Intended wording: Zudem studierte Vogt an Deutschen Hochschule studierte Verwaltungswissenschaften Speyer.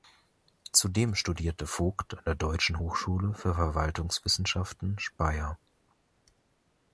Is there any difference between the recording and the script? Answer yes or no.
yes